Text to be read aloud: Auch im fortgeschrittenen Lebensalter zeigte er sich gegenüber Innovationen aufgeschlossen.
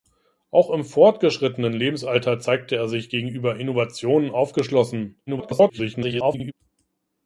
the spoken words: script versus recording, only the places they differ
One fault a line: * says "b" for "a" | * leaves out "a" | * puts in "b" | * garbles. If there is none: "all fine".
* garbles